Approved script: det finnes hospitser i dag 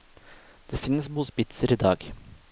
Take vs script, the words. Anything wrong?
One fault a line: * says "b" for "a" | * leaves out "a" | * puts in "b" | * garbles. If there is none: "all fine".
all fine